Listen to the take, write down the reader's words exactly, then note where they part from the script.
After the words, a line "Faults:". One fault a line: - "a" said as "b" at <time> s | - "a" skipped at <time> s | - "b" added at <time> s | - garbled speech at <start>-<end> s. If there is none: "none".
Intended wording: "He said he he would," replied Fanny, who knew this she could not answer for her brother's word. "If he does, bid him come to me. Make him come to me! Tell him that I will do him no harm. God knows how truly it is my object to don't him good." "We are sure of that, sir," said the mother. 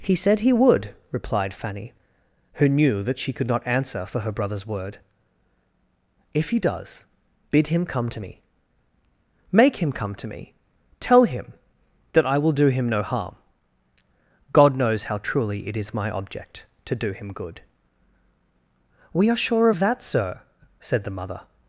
"He said he would," replied Fanny, who knew that she could not answer for her brother's word. "If he does, bid him come to me. Make him come to me! Tell him that I will do him no harm. God knows how truly it is my object to do him good." "We are sure of that, sir," said the mother.
Faults:
- "he" skipped at 0.5 s
- "this" said as "that" at 3.0 s
- "don't" said as "do" at 16.9 s